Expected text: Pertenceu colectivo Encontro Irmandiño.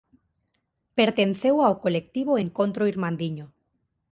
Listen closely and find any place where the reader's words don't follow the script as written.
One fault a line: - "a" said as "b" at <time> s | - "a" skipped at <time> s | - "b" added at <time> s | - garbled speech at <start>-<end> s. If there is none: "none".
- "ao" added at 1.6 s